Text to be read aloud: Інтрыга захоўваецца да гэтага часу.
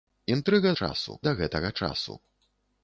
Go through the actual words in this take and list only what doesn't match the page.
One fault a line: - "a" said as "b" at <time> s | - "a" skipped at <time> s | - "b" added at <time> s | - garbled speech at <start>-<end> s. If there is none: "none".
- "захоўваецца" said as "часу" at 0.8 s